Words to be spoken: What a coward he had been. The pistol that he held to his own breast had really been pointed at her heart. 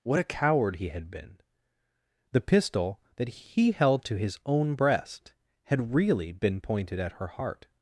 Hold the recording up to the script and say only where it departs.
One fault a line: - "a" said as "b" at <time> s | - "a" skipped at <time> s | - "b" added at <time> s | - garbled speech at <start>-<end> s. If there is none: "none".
none